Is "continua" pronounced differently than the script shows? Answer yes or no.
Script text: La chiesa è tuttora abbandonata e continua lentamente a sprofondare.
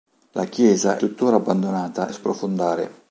yes